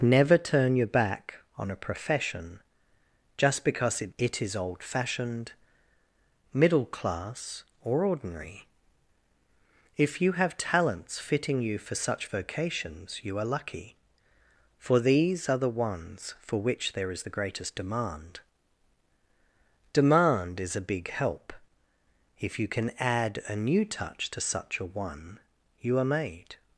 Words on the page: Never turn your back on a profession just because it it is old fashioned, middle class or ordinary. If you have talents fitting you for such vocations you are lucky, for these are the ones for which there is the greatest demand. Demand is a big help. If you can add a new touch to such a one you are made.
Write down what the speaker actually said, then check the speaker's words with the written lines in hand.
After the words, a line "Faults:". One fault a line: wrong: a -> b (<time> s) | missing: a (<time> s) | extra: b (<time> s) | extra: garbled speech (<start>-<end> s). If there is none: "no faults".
Never turn your back on a profession just because it it is old fashioned, middle class or ordinary. If you have talents fitting you for such vocations you are lucky, for these are the ones for which there is the greatest demand. Demand is a big help. If you can add a new touch to such a one you are made.
Faults:
no faults